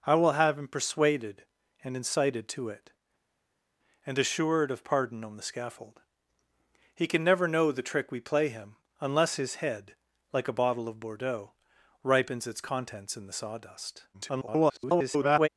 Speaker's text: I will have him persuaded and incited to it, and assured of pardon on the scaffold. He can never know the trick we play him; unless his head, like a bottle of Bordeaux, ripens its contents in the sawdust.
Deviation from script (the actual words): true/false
true